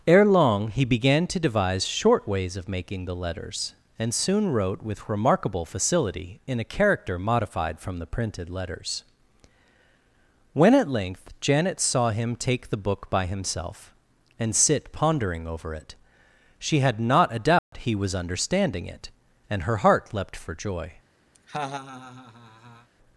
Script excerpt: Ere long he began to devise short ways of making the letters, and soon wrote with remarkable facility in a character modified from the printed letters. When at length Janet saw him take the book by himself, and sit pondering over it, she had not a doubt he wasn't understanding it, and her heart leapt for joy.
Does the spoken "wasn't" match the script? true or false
false